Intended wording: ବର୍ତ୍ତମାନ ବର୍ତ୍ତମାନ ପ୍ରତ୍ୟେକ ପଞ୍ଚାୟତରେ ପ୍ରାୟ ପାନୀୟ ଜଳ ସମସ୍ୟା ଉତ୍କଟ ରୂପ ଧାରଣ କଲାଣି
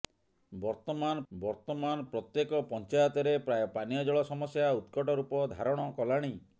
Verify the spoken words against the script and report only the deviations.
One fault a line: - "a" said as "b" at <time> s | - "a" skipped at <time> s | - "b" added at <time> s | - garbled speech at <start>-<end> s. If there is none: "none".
none